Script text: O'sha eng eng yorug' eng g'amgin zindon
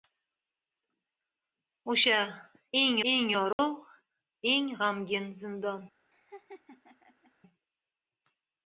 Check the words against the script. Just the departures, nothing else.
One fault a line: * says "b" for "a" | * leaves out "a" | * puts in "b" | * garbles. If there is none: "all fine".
all fine